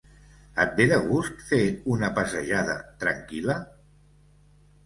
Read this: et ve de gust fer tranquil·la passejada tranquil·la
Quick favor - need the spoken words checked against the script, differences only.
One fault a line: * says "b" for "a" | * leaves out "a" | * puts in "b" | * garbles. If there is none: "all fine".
* says "una" for "tranquil·la"